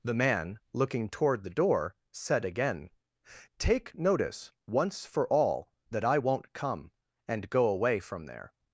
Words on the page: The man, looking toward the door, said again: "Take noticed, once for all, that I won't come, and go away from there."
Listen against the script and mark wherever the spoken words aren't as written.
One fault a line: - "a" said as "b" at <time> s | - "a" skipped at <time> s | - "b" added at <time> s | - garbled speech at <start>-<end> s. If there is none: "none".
- "noticed" said as "notice" at 3.9 s